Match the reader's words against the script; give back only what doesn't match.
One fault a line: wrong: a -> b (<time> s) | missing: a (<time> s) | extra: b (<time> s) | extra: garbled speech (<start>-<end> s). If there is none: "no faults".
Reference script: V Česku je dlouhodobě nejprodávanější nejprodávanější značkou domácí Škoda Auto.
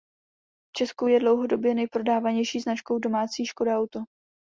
missing: nejprodávanější (2.6 s)